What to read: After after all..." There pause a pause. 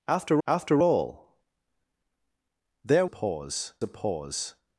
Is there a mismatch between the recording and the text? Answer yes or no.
no